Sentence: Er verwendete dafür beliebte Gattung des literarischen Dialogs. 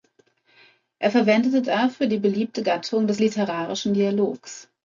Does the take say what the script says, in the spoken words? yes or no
no